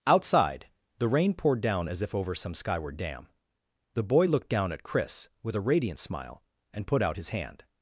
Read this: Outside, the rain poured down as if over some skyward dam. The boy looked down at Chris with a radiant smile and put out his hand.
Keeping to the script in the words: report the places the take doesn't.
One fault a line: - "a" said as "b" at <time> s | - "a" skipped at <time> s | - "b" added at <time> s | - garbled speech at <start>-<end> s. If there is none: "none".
none